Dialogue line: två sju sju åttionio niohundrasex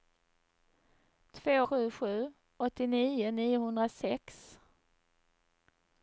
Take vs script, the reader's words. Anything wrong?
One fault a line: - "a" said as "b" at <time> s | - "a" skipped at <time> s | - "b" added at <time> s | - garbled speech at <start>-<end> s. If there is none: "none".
none